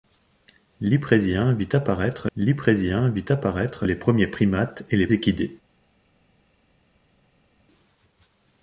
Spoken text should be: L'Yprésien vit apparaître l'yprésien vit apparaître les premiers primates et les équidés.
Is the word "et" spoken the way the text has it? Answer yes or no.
yes